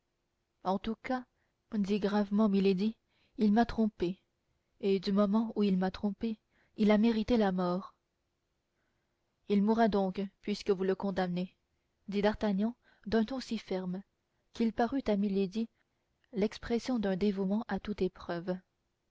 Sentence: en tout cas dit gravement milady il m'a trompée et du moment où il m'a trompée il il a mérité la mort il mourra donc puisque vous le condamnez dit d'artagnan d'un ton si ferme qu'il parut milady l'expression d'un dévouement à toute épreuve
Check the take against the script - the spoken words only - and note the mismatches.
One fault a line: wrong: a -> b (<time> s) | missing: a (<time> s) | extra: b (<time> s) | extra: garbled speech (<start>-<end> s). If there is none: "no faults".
missing: il (6.9 s)
extra: à (15.1 s)